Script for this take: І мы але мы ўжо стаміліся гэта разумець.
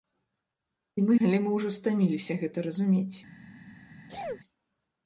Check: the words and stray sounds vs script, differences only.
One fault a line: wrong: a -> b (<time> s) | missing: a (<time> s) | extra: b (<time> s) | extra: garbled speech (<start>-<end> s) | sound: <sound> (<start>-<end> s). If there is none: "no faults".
sound: sneeze (4.1-4.4 s)